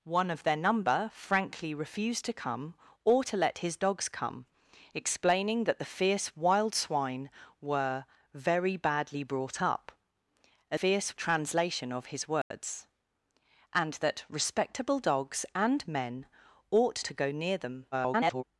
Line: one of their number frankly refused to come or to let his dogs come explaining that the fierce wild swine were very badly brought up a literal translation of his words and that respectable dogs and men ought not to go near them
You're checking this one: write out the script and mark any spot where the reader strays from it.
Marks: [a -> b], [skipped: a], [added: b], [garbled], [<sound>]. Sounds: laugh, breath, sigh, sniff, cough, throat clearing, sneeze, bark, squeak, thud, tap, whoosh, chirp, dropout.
one of their number frankly refused to come or to let his dogs come explaining that the fierce wild swine were very badly brought up a [literal -> fierce] translation of his words [dropout] and that respectable dogs and men ought [skipped: not] to go near them [garbled]